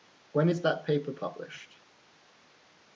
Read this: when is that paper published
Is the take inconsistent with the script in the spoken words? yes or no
no